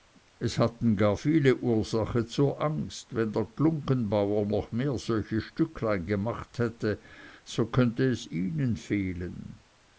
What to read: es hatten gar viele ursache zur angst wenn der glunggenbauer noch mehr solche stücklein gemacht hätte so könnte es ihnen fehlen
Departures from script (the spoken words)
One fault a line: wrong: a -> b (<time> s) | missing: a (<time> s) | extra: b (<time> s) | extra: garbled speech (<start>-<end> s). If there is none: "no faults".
no faults